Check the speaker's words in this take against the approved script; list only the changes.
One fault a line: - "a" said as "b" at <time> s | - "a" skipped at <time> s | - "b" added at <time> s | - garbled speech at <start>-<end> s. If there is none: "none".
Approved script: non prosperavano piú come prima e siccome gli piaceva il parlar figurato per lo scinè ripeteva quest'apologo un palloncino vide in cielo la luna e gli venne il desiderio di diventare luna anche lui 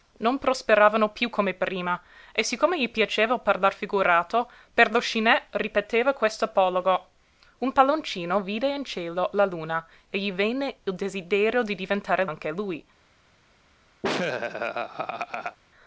- "luna" skipped at 12.2 s